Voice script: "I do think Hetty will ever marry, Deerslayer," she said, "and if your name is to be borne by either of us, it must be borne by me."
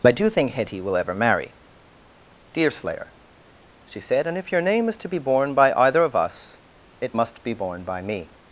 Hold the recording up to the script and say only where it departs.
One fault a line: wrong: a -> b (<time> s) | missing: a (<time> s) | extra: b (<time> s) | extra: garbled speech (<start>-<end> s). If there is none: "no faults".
no faults